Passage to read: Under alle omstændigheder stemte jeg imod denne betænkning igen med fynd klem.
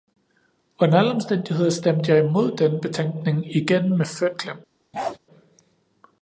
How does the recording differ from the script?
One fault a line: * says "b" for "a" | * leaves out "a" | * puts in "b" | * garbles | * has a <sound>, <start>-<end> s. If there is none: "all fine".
* has a bark, 4.9-5.2 s